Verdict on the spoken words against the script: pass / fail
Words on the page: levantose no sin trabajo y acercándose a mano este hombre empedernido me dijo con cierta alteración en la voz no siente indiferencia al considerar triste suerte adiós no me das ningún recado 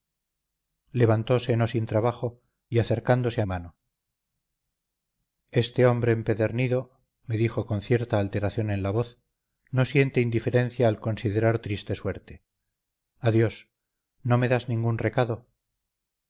pass